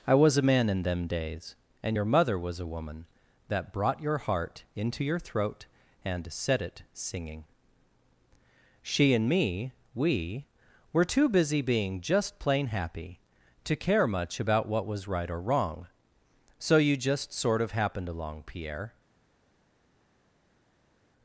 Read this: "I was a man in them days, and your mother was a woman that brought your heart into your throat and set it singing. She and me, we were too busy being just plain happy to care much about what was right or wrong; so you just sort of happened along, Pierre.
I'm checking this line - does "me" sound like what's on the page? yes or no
yes